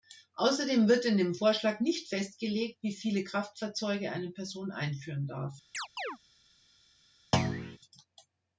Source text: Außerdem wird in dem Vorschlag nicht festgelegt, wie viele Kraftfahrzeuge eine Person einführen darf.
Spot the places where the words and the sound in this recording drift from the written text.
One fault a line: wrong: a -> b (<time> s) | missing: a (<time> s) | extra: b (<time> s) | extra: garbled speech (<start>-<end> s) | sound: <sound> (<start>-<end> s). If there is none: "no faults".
sound: chirp (5.7-6.2 s)
sound: thud (7.3-7.8 s)